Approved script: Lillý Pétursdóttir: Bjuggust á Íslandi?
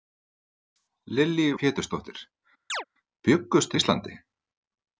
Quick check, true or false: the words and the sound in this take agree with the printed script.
false